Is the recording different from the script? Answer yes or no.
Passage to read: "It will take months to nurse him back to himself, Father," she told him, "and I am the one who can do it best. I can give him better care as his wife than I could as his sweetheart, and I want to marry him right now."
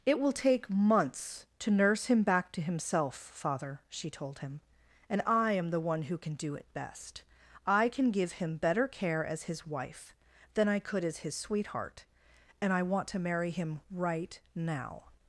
no